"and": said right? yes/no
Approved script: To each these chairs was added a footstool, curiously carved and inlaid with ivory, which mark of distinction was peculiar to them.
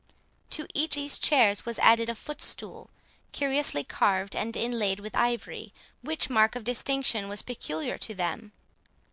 yes